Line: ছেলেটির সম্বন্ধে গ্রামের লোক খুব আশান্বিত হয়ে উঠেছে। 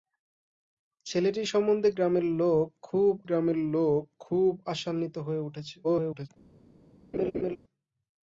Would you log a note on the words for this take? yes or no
yes